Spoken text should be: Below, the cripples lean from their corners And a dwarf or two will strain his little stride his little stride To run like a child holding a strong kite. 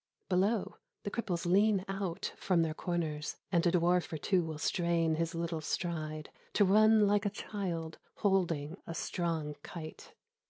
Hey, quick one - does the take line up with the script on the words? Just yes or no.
no